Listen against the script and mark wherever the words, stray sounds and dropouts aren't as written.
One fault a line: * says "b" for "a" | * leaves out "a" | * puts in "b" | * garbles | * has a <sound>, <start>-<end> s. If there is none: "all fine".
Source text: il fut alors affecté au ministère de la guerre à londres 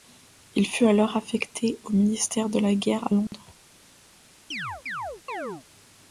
* has a dropout, 3.3-3.3 s
* has a chirp, 4.5-5.6 s